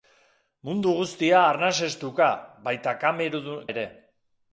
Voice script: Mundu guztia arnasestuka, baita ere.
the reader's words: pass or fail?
pass